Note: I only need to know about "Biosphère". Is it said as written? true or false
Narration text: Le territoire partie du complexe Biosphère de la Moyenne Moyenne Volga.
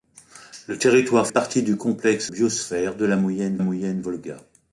true